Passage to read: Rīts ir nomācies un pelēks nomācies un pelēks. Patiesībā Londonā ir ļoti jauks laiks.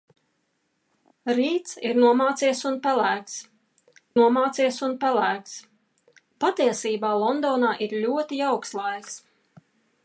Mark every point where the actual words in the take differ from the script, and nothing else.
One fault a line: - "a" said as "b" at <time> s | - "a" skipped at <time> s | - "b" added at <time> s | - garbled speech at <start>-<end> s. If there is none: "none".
none